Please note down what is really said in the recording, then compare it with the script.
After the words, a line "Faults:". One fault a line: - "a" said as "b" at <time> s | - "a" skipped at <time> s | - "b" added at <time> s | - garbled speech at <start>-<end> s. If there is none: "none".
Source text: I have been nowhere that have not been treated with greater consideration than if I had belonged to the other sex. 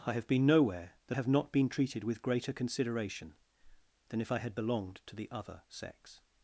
I have been nowhere that have not been treated with greater consideration than if I had belonged to the other sex.
Faults:
none